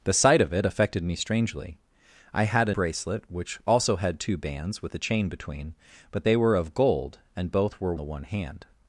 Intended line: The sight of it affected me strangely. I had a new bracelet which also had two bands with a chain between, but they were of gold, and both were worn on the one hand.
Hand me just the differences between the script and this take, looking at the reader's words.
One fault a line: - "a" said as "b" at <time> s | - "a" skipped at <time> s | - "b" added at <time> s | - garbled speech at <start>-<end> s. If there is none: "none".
- "new" skipped at 2.8 s
- "worn on" skipped at 7.9 s